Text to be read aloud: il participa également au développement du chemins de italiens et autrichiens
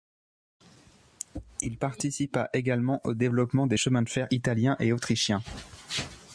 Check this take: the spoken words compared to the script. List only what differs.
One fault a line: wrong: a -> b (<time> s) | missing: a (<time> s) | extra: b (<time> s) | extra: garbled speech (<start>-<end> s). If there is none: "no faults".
wrong: du -> des (3.7 s)
extra: fer (4.1 s)